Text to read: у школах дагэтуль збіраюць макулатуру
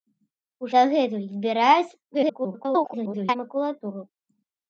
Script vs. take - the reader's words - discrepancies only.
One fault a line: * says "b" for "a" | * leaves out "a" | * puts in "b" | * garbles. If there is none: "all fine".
* leaves out "школах"
* garbles